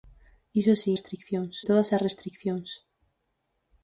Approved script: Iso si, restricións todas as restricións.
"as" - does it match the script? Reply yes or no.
yes